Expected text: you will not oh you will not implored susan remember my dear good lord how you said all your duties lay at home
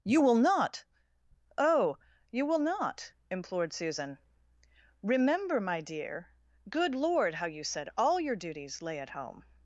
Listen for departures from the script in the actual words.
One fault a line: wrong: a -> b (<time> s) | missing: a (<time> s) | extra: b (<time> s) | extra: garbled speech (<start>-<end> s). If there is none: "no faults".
no faults